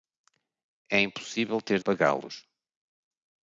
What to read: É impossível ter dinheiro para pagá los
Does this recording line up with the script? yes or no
no